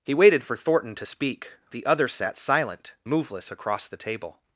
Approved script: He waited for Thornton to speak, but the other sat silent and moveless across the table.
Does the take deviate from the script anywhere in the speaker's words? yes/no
yes